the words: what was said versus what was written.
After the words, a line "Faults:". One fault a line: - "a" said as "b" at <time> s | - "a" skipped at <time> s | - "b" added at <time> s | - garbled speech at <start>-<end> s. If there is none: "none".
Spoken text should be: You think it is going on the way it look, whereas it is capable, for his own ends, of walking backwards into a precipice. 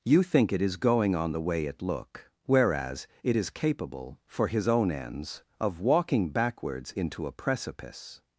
You think it is going on the way it look, whereas it is capable, for his own ends, of walking backwards into a precipice.
Faults:
none